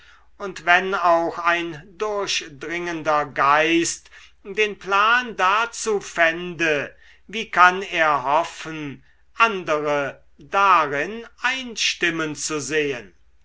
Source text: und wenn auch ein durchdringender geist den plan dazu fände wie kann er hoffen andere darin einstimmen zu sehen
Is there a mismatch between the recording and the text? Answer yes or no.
no